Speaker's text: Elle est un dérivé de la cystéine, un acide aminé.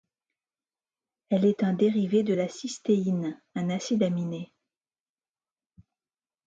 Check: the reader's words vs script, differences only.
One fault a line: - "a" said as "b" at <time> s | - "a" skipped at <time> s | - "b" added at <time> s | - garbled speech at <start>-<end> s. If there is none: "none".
none